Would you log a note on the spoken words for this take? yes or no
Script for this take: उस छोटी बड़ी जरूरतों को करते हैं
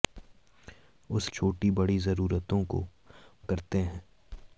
no